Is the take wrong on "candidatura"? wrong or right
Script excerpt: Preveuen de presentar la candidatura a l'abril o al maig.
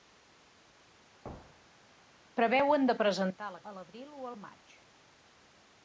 wrong